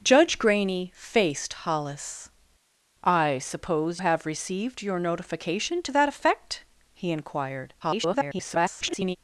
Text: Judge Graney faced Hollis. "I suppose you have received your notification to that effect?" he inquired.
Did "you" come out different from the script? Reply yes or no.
yes